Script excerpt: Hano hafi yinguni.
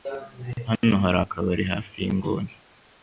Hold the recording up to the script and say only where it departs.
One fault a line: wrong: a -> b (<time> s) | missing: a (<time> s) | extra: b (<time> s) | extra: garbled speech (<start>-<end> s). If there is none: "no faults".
extra: hari akabari (1.0 s)